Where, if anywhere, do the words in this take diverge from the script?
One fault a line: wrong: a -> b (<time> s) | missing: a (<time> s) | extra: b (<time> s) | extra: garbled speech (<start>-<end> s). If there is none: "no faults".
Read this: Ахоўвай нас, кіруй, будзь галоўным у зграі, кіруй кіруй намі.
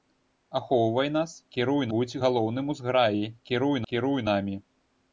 no faults